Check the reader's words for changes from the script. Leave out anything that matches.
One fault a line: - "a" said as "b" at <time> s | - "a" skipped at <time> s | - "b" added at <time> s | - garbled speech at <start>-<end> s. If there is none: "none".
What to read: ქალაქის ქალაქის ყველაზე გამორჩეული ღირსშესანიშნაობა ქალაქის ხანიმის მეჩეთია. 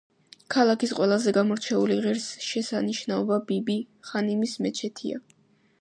- "ქალაქის" skipped at 0.9 s
- "ქალაქის" said as "ბიბი" at 3.5 s